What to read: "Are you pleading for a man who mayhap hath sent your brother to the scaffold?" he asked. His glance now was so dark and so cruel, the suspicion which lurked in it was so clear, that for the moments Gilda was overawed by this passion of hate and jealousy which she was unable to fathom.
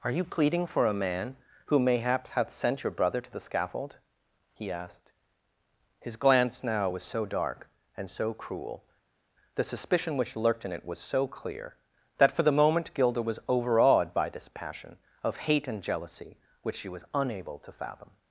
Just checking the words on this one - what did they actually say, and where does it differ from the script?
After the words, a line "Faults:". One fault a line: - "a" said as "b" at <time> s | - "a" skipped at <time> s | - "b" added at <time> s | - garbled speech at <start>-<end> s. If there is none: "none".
"Are you pleading for a man who mayhap hath sent your brother to the scaffold?" he asked. His glance now was so dark and so cruel, the suspicion which lurked in it was so clear, that for the moment Gilda was overawed by this passion of hate and jealousy which she was unable to fathom.
Faults:
- "moments" said as "moment" at 12.6 s